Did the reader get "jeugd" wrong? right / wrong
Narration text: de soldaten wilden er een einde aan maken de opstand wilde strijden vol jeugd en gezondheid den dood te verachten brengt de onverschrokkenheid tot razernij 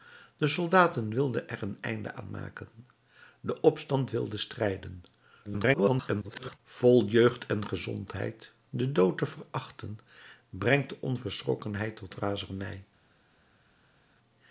right